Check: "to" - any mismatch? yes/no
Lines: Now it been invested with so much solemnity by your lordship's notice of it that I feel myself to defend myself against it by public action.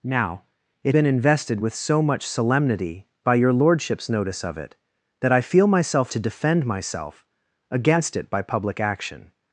no